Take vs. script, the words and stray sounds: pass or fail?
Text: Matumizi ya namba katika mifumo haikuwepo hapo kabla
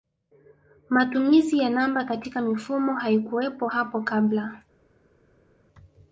pass